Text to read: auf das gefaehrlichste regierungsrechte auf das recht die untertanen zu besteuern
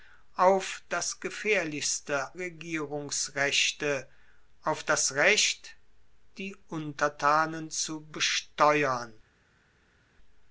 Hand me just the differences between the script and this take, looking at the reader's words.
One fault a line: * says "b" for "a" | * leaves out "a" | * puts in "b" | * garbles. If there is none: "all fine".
all fine